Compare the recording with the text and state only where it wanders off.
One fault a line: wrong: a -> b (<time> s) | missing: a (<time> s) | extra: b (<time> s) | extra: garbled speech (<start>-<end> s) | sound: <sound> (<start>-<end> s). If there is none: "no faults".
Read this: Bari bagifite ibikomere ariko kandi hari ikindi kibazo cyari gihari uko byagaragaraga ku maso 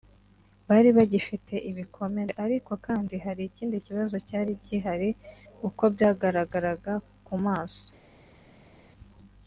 no faults